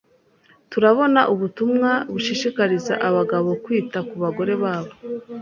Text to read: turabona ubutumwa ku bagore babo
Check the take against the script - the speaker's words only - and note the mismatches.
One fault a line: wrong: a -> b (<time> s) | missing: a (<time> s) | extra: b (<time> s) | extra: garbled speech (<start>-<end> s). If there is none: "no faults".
extra: bushishikariza abagabo kwita (2.1 s)